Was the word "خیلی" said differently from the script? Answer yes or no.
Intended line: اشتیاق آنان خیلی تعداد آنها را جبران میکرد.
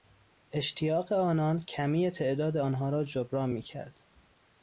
yes